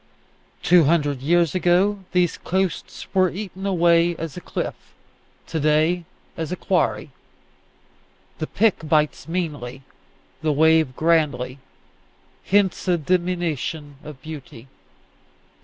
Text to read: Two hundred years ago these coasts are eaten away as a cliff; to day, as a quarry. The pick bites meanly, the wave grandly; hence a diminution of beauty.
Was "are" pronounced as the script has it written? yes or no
no